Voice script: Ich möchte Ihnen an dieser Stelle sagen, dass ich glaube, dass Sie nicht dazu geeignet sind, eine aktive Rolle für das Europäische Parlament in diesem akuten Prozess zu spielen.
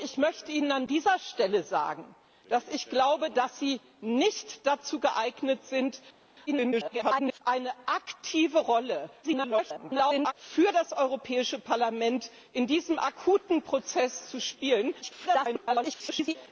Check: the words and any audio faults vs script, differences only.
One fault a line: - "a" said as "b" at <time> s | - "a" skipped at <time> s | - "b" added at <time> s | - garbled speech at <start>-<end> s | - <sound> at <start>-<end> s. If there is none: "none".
- garbled speech at 6.5-7.4 s
- garbled speech at 9.2-10.3 s
- garbled speech at 15.0-16.4 s